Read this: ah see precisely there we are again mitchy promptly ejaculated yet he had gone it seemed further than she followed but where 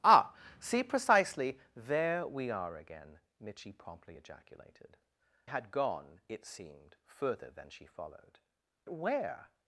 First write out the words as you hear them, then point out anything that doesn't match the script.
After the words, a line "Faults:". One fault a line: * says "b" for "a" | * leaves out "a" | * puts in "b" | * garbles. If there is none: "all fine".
ah see precisely there we are again mitchy promptly ejaculated had gone it seemed further than she followed where
Faults:
* leaves out "yet he"
* leaves out "but"